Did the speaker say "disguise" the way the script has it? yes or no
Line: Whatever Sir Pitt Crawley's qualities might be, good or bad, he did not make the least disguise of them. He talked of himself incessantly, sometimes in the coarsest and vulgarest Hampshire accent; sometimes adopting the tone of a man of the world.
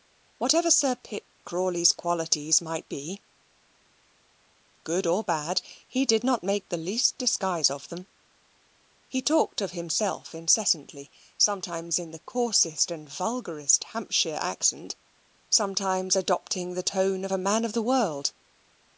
yes